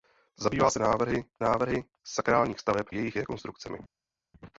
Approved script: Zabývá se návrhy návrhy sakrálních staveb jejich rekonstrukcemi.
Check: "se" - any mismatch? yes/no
no